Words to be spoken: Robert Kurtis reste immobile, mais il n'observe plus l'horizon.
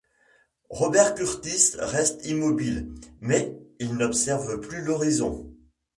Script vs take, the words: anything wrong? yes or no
no